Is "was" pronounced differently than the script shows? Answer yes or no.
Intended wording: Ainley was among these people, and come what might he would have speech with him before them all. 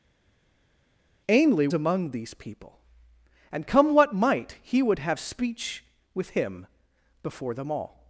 yes